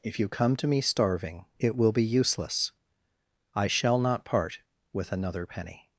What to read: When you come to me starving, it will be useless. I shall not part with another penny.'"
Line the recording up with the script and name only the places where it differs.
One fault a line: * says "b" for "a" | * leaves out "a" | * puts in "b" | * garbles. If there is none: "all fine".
* says "If" for "When"